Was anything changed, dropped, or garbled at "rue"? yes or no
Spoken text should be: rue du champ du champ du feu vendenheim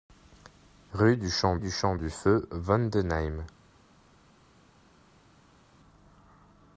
no